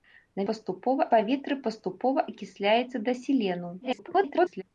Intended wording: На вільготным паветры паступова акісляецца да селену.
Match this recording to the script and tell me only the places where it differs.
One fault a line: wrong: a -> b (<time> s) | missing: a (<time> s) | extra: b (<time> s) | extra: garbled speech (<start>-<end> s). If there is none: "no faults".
wrong: вільготным -> паступова (0.5 s)
extra: garbled speech (3.8-4.6 s)